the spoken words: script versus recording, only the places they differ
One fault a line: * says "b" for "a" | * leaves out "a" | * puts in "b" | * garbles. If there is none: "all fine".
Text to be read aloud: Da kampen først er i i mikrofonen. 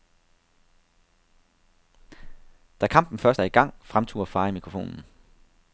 * puts in "gang fremturer far"